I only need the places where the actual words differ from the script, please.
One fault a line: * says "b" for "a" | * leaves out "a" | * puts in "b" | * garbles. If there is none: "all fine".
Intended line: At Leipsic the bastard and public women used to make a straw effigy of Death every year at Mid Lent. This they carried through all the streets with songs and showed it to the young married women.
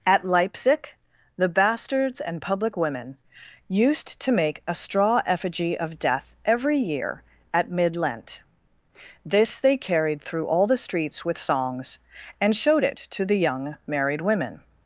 * says "bastards" for "bastard"